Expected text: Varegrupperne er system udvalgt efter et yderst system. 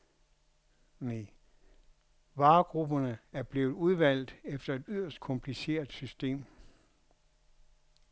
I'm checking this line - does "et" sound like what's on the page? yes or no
yes